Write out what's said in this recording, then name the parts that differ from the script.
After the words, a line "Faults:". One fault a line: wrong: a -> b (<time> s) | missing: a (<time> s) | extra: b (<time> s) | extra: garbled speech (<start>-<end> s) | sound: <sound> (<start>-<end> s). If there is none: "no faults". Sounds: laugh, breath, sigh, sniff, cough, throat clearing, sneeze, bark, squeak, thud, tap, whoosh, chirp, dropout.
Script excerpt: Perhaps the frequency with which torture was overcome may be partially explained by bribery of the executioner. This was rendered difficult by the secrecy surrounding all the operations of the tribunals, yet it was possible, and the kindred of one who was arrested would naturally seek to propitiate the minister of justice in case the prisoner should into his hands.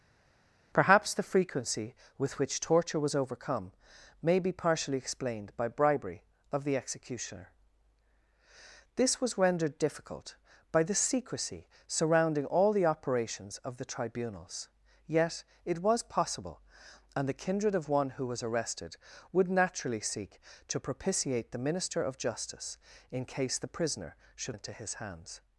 Perhaps the frequency with which torture was overcome may be partially explained by bribery of the executioner. This was rendered difficult by the secrecy surrounding all the operations of the tribunals, yet it was possible, and the kindred of one who was arrested would naturally seek to propitiate the minister of justice in case the prisoner should into his hands.
Faults:
no faults